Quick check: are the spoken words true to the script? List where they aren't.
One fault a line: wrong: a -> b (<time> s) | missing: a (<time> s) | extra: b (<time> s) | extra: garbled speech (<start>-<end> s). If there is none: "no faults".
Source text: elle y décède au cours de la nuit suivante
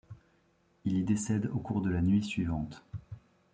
wrong: elle -> il (0.8 s)